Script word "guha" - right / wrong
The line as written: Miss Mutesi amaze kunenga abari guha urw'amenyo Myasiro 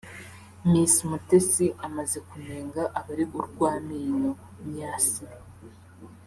wrong